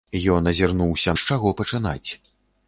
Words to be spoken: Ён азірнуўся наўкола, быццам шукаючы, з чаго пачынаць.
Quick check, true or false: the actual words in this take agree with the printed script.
false